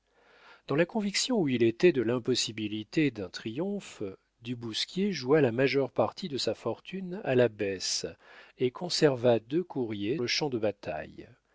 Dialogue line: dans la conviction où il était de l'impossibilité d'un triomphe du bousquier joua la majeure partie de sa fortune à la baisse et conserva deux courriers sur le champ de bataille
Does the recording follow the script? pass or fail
fail